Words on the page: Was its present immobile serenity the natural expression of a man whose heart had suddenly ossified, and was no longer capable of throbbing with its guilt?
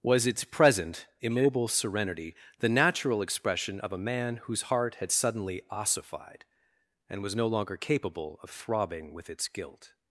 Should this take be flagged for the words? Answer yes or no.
no